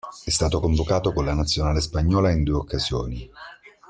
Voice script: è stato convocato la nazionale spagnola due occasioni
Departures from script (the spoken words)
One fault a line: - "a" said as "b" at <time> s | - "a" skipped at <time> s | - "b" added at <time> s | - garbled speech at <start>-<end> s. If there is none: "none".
- "con" added at 1.1 s
- "in" added at 2.3 s